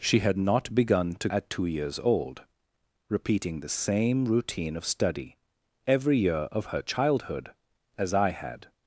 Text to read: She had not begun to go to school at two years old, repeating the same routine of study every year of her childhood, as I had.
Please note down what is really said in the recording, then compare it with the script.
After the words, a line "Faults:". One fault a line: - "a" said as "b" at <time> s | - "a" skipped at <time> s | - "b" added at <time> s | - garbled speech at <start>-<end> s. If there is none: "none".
She had not begun to at two years old, repeating the same routine of study every year of her childhood, as I had.
Faults:
- "go to school" skipped at 1.3 s